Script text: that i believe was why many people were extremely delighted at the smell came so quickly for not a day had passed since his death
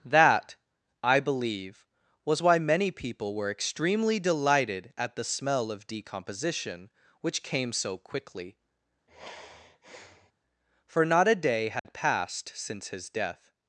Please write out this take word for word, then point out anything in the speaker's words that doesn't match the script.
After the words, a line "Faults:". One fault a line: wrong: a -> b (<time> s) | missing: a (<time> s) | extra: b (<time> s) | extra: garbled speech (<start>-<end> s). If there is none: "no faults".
that i believe was why many people were extremely delighted at the smell of decomposition which came so quickly for not a day had passed since his death
Faults:
extra: of decomposition which (5.7 s)